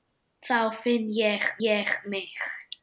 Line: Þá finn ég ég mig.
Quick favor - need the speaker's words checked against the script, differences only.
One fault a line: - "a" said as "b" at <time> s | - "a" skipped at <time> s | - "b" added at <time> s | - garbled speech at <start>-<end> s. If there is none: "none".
none